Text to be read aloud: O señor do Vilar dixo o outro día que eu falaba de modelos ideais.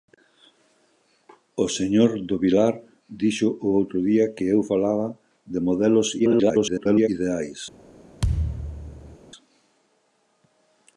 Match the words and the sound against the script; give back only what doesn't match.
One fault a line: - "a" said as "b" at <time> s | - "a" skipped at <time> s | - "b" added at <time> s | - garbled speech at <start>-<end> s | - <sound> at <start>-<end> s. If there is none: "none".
- garbled speech at 6.2-7.1 s
- thud at 8.2-9.2 s